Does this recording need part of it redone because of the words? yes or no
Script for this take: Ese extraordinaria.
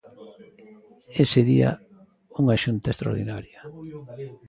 yes